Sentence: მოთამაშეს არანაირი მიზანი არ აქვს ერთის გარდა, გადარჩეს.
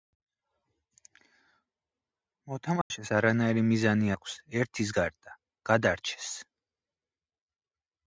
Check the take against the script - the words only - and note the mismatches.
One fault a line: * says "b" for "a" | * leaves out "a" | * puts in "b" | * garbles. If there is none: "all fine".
* leaves out "არ"